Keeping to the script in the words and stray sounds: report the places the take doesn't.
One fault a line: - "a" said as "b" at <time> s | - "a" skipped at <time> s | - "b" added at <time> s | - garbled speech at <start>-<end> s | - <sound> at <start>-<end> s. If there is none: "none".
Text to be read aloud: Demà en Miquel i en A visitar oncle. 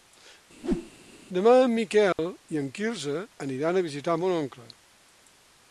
- whoosh at 0.6-0.9 s
- dropout at 2.1-2.2 s
- "Quirze aniran" added at 2.8 s
- "mon" added at 4.2 s